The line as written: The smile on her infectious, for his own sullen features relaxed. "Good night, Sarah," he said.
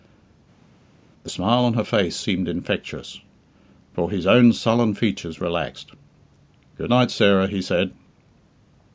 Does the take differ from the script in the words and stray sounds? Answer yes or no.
yes